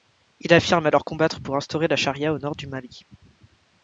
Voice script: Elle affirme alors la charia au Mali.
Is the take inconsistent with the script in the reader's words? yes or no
yes